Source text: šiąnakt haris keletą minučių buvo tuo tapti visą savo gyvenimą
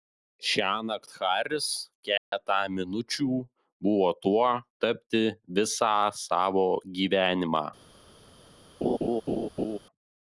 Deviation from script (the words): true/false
false